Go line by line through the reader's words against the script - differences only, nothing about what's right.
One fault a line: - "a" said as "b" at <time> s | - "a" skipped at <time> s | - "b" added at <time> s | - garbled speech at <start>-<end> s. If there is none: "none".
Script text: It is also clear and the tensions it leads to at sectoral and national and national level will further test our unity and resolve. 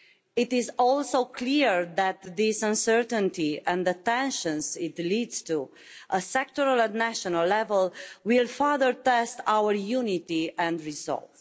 - "that this uncertainty" added at 2.0 s
- "and national" skipped at 7.5 s